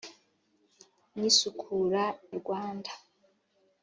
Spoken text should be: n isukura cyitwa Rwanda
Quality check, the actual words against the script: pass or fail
fail